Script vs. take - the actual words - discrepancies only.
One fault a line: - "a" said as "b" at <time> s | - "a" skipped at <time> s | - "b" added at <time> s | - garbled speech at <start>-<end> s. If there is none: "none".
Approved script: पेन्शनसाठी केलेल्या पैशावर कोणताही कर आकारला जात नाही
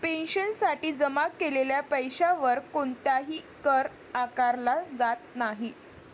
- "जमा" added at 0.9 s